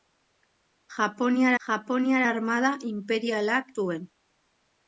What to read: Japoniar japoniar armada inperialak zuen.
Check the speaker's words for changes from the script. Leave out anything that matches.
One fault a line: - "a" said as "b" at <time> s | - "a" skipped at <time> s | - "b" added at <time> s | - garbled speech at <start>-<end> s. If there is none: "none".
none